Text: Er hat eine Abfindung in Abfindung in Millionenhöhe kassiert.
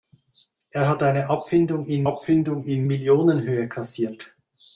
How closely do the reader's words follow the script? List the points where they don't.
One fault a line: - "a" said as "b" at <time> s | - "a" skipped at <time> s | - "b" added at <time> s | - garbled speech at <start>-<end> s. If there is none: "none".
none